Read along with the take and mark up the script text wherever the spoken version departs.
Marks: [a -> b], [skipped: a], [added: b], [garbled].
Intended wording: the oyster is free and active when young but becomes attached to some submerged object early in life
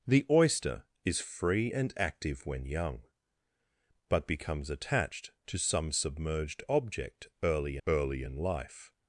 the oyster is free and active when young but becomes attached to some submerged object early [added: early] in life